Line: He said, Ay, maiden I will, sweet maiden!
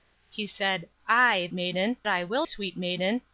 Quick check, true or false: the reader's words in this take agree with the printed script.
true